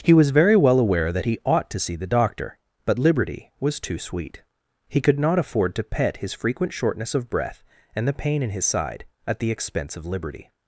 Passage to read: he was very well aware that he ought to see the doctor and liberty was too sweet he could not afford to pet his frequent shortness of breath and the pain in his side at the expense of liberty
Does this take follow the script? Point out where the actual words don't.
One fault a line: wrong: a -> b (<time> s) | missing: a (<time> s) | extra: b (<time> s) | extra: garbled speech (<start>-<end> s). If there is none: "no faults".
wrong: and -> but (2.9 s)